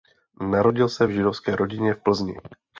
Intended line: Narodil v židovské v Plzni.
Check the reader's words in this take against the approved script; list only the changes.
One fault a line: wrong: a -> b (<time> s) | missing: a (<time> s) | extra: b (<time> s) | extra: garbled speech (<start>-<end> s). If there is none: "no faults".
extra: se (0.9 s)
extra: rodině (1.6 s)